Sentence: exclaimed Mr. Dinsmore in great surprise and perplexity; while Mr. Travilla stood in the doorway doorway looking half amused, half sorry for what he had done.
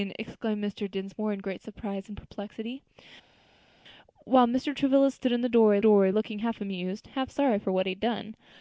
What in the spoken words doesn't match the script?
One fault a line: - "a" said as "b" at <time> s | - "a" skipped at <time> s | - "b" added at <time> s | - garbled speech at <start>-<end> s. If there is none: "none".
none